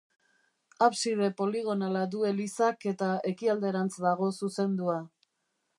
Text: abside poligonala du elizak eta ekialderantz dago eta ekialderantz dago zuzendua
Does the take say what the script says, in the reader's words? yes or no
no